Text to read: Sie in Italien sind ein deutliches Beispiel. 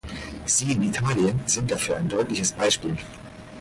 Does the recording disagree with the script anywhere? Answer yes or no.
yes